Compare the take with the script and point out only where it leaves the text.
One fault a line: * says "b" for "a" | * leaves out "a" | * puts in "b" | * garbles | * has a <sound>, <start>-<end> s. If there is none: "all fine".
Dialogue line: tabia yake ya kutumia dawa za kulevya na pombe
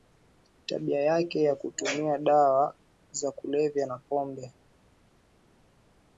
all fine